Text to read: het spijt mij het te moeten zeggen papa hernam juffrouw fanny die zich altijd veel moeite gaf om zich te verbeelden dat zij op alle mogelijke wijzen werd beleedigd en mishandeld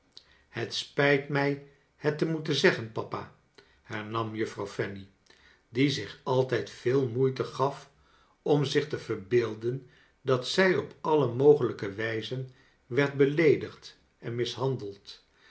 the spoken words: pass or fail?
pass